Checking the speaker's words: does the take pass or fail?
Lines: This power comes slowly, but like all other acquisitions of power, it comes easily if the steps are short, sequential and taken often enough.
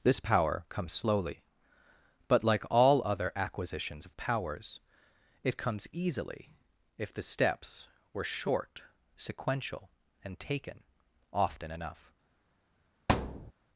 fail